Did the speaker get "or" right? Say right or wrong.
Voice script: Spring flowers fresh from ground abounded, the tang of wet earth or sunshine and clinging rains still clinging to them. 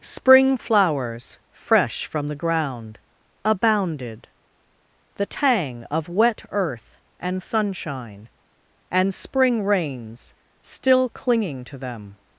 wrong